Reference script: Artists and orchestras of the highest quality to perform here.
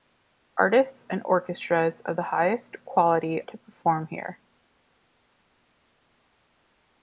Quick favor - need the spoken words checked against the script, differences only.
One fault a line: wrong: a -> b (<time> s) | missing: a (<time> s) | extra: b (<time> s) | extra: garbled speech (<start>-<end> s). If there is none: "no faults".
no faults